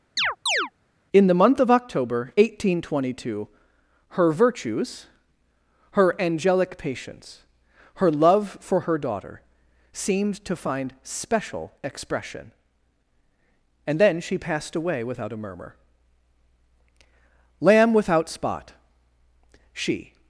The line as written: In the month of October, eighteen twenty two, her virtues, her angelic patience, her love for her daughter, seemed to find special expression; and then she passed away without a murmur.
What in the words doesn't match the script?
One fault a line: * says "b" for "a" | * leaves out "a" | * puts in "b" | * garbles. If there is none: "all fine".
* puts in "Lamb without spot she"